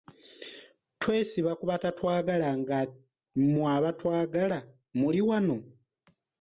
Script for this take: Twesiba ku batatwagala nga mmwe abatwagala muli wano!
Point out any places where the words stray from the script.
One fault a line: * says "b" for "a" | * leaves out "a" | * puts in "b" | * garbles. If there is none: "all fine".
all fine